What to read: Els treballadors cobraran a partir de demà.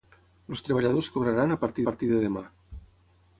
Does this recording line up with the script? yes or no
no